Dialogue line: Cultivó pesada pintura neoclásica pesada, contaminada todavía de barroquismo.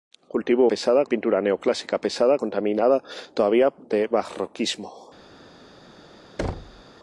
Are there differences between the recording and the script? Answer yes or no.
no